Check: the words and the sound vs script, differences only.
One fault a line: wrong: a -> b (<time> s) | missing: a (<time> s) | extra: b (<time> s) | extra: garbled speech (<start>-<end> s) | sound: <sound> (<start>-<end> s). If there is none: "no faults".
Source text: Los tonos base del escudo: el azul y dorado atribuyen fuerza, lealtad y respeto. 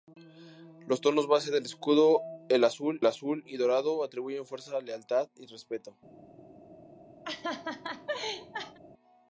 extra: azul (3.0 s)
sound: laugh (7.2-8.8 s)